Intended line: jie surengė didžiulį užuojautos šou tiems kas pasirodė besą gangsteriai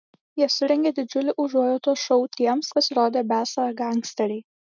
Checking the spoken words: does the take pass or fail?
fail